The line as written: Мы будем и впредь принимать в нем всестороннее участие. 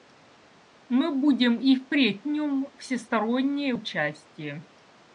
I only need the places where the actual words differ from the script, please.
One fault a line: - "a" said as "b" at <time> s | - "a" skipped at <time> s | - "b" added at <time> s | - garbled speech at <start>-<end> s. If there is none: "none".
- "принимать" skipped at 2.2 s